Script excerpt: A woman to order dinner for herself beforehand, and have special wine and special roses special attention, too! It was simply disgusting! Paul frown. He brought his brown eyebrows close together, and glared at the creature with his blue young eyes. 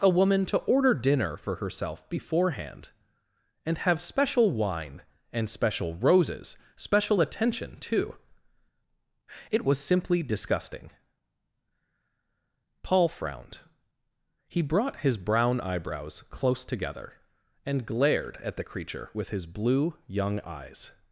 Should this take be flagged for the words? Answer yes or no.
yes